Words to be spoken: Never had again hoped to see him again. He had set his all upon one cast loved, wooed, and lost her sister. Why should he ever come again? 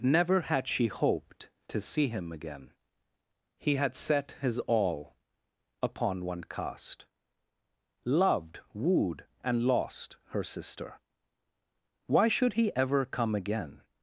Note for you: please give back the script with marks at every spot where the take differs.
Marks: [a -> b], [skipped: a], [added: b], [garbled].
Never had [again -> she] hoped to see him again. He had set his all upon one cast loved, wooed, and lost her sister. Why should he ever come again?